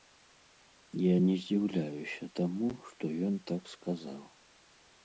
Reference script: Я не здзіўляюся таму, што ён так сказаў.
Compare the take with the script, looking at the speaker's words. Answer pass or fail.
pass